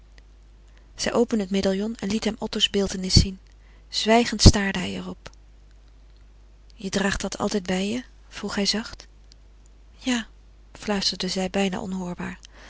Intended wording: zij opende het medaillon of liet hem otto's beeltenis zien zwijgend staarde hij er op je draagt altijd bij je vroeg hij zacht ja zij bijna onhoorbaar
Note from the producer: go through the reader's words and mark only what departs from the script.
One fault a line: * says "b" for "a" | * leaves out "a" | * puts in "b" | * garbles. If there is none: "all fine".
* says "en" for "of"
* puts in "dat"
* puts in "fluisterde"